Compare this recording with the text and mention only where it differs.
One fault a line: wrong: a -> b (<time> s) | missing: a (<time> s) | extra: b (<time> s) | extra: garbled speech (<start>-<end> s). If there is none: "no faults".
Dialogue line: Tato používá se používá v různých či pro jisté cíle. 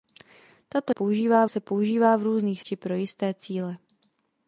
no faults